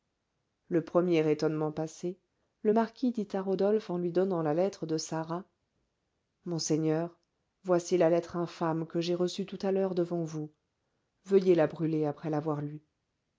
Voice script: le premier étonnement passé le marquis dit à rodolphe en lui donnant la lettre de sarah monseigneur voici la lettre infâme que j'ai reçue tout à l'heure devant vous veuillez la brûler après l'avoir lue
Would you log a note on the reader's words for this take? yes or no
no